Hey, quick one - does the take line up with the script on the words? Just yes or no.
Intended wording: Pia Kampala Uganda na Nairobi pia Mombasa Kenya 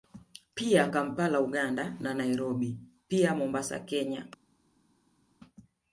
yes